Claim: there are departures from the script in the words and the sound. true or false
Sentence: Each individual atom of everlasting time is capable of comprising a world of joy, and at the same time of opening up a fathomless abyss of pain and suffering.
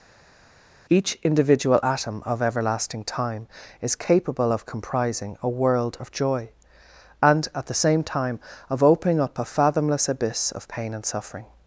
false